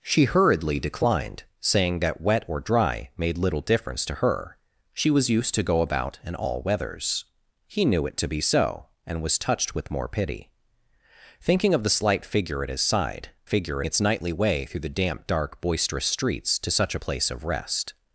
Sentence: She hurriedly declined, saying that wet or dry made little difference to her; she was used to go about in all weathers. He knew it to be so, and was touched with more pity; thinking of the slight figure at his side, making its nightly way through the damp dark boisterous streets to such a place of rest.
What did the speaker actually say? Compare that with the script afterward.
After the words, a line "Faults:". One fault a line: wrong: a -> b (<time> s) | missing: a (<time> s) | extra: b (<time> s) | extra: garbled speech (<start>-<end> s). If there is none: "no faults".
She hurriedly declined, saying that wet or dry made little difference to her; she was used to go about in all weathers. He knew it to be so, and was touched with more pity; thinking of the slight figure at his side, figure its nightly way through the damp dark boisterous streets to such a place of rest.
Faults:
wrong: making -> figure (13.4 s)